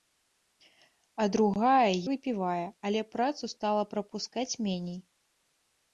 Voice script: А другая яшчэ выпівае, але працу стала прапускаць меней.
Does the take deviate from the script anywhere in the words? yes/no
yes